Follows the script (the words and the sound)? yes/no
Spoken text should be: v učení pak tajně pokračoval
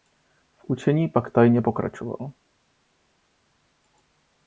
yes